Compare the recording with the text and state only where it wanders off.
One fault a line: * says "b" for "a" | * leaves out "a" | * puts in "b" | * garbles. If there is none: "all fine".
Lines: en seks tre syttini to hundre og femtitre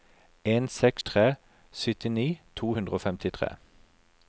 all fine